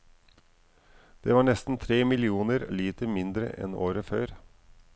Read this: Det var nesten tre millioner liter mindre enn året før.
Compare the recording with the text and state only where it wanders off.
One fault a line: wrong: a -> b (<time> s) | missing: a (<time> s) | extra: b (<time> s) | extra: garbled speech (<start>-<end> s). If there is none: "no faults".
no faults